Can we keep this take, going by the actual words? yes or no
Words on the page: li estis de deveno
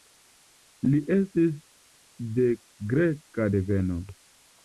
no